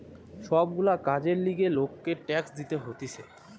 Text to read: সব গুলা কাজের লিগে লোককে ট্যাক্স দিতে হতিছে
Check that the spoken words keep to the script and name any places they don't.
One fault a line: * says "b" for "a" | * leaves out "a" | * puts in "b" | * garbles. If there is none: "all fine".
all fine